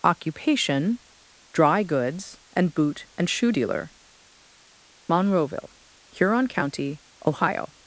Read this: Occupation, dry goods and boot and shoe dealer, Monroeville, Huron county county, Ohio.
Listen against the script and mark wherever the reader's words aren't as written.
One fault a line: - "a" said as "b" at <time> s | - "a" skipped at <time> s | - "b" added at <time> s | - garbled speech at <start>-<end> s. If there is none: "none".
- "county" skipped at 7.0 s